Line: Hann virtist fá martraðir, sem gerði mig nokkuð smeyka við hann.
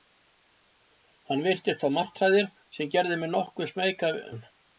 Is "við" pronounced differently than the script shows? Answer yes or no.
yes